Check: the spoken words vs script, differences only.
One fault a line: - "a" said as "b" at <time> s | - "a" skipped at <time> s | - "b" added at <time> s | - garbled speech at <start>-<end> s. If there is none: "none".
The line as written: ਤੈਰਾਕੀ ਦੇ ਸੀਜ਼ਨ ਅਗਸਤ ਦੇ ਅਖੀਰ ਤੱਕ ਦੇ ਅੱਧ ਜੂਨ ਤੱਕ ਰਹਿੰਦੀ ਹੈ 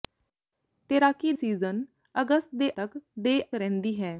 - "ਦੇ" skipped at 1.3 s
- "ਅਖੀਰ" skipped at 2.7 s
- "ਅੱਧ ਜੂਨ ਤੱਕ" skipped at 3.4 s